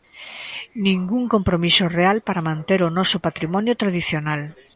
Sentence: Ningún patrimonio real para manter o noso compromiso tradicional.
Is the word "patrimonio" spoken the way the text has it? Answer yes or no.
no